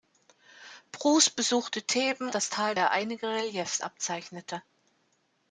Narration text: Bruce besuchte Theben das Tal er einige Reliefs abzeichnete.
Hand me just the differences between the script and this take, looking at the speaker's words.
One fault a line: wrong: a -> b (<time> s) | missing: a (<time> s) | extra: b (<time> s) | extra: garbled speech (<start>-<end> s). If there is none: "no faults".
no faults